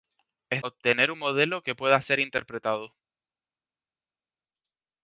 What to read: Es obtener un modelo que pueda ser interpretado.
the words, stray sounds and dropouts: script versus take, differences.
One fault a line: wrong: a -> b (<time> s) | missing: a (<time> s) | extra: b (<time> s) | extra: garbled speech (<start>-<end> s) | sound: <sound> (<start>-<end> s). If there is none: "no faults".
no faults